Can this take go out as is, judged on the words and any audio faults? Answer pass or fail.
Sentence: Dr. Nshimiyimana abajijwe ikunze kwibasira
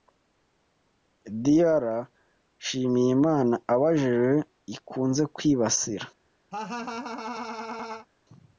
fail